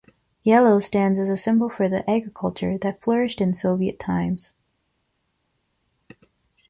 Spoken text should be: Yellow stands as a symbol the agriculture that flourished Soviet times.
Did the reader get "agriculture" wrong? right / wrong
right